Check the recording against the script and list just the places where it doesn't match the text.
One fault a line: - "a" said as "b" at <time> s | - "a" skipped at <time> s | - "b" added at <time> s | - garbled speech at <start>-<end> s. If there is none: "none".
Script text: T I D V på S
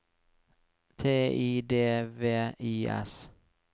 - "på" said as "I" at 2.6 s